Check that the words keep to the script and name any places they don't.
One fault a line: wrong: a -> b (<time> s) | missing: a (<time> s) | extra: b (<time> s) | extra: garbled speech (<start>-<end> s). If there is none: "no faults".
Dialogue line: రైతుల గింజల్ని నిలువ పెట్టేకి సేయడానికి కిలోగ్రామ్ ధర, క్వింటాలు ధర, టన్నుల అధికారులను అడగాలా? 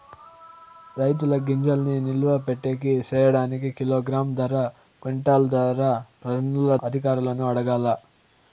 no faults